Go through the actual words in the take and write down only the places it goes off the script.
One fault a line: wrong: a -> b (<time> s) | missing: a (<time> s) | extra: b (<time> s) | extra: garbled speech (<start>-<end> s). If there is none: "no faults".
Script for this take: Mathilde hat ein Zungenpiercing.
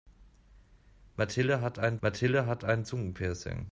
extra: mathilde hat ein (2.1 s)